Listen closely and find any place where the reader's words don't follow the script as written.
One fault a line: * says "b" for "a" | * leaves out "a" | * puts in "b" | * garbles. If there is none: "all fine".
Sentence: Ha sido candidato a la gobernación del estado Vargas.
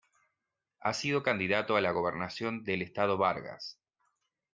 all fine